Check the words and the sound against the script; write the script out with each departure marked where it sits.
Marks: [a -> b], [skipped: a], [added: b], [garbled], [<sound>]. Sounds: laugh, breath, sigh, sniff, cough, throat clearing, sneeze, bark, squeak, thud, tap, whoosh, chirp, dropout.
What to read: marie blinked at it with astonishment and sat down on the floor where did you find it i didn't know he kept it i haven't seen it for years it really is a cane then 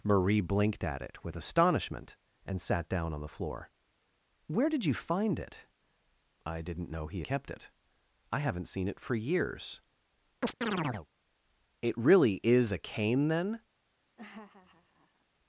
marie blinked at it with astonishment and sat down on the floor where did you find it i didn't know he kept it i haven't seen it for years [chirp] it really is a cane then [laugh]